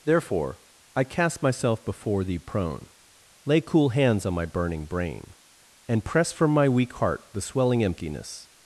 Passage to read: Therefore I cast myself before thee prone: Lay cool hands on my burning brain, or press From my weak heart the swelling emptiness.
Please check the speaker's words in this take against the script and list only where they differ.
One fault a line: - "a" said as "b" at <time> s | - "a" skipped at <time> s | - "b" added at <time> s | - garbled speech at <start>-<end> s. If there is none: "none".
- "or" said as "and" at 5.9 s